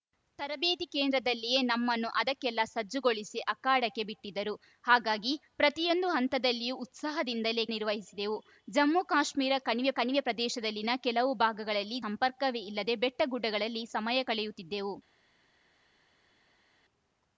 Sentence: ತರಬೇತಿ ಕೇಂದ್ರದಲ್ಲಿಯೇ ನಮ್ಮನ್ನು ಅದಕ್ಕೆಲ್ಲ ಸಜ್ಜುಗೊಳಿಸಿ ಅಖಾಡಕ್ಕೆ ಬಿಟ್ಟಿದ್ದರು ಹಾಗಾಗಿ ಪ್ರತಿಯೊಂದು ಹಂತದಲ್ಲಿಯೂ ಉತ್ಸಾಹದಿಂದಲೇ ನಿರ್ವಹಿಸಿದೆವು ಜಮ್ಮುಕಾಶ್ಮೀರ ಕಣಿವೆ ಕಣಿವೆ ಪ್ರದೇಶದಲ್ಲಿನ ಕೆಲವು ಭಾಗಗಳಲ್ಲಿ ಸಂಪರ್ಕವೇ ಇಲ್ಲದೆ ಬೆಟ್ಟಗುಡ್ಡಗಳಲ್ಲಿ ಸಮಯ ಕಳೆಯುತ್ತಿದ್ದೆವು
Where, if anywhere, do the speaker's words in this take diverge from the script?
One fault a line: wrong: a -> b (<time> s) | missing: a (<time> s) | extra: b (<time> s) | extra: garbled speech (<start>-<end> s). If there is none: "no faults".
no faults